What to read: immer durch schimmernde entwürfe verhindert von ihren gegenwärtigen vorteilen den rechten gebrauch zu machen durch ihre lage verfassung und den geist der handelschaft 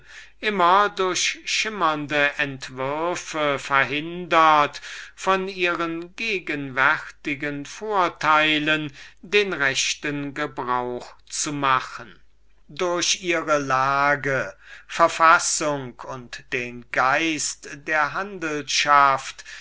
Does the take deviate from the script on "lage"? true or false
false